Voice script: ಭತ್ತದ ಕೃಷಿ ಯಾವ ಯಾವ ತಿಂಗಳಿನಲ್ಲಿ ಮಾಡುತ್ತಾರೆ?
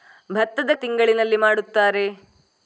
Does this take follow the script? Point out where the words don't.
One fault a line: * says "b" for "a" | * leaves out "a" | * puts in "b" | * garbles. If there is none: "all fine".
* leaves out "ಕೃಷಿ ಯಾವ ಯಾವ"